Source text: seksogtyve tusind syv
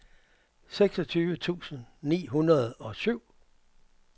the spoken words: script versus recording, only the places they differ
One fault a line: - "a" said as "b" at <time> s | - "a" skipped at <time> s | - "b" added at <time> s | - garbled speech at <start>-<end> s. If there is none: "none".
- "ni hundrede og" added at 2.0 s